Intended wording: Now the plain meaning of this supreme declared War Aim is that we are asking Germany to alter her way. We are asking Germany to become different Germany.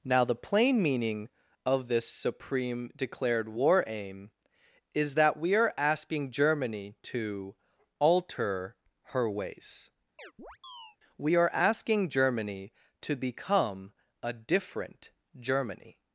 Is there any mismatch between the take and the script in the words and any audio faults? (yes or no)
yes